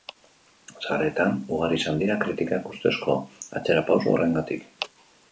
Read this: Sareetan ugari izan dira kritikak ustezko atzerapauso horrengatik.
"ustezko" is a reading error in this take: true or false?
false